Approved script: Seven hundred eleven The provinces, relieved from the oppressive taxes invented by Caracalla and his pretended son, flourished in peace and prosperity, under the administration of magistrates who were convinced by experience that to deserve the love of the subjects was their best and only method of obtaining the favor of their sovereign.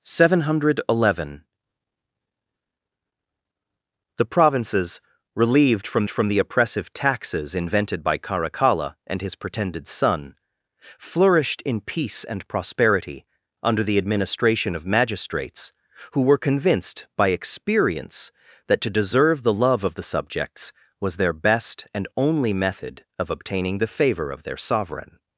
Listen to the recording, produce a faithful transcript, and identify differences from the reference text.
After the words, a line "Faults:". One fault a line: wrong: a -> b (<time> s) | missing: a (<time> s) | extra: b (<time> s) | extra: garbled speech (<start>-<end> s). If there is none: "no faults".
Seven hundred eleven The provinces, relieved from from the oppressive taxes invented by Caracalla and his pretended son, flourished in peace and prosperity, under the administration of magistrates who were convinced by experience that to deserve the love of the subjects was their best and only method of obtaining the favor of their sovereign.
Faults:
extra: from (6.1 s)